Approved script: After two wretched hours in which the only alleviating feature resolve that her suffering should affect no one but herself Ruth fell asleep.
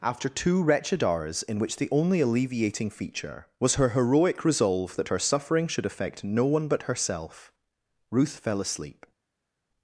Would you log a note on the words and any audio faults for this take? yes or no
yes